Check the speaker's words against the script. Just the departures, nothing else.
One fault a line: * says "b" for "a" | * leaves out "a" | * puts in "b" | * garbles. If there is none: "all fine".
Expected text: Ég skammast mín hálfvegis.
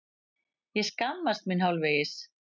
all fine